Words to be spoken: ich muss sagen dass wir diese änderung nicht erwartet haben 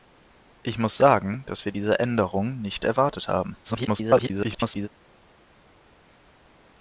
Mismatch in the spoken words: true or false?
true